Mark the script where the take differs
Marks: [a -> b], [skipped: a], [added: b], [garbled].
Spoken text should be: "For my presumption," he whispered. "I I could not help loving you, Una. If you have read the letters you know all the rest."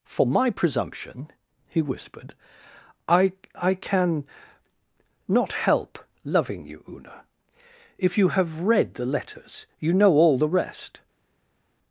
"For my presumption," he whispered. "I I [could -> can] not help loving you, Una. If you have read the letters you know all the rest."